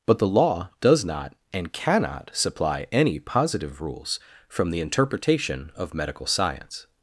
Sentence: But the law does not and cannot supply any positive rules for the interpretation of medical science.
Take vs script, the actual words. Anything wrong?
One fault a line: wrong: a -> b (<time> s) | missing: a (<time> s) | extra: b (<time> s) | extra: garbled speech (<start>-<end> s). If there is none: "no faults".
wrong: for -> from (4.5 s)